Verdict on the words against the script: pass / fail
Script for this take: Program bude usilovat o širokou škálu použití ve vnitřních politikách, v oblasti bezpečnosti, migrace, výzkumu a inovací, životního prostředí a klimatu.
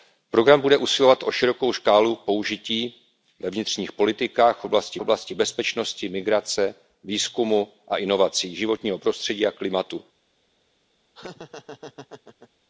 fail